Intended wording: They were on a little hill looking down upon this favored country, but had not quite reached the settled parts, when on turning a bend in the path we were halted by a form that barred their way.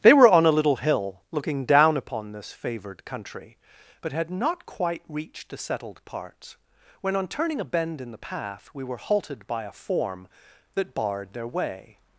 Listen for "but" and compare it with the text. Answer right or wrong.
right